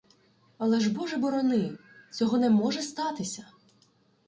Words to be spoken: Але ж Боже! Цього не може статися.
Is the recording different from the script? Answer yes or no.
yes